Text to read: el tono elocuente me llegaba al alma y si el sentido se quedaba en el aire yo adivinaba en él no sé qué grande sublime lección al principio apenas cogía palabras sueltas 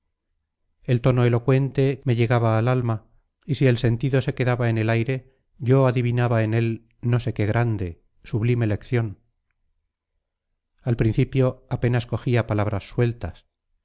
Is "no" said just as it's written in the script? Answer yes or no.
yes